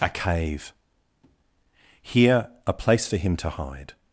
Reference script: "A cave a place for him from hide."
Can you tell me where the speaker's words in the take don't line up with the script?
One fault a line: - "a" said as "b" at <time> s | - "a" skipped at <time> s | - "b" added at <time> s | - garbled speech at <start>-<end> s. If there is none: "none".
- "here" added at 2.0 s
- "from" said as "to" at 3.4 s